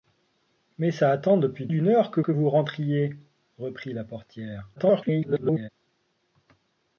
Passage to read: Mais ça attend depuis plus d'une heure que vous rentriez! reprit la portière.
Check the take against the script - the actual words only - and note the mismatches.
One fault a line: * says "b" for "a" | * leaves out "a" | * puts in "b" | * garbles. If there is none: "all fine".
* leaves out "plus"
* puts in "que"
* garbles